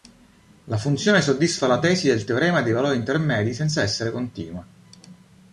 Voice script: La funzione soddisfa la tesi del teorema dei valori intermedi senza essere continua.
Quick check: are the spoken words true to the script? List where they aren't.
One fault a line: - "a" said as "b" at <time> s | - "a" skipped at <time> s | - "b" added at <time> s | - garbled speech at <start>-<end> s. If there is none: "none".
none